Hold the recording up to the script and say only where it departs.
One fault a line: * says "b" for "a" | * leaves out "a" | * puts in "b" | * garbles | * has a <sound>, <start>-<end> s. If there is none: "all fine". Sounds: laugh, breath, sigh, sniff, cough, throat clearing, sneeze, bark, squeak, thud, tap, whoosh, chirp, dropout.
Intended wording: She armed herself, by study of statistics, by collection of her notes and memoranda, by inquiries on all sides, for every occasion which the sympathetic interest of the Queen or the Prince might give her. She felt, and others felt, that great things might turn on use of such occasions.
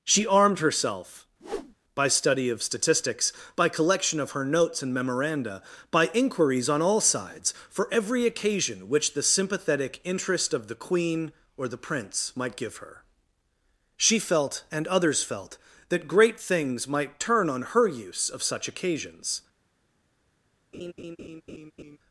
* has a whoosh, 1.4-1.7 s
* puts in "her"
* has a laugh, 20.7-22.0 s